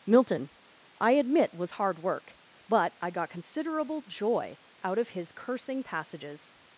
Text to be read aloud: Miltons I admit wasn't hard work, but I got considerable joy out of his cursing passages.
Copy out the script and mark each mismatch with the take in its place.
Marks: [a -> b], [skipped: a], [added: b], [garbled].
[Miltons -> Milton] I admit [wasn't -> was] hard work, but I got considerable joy out of his cursing passages.